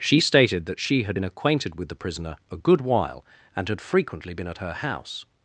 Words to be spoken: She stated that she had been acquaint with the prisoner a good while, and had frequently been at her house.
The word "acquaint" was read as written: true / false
false